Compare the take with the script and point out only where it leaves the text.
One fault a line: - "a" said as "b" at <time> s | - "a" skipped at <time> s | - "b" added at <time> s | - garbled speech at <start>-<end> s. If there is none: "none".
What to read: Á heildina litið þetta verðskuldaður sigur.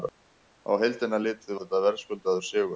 none